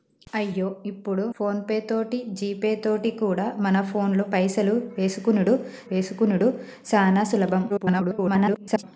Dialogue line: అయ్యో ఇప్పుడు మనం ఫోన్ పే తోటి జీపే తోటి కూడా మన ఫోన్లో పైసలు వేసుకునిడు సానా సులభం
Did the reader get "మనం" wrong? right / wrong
wrong